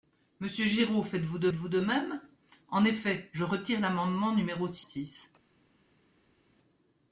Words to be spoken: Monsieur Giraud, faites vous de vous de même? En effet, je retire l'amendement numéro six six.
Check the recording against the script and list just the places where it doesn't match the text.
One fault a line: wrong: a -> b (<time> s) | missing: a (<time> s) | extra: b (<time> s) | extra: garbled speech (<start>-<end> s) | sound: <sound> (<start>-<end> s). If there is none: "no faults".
no faults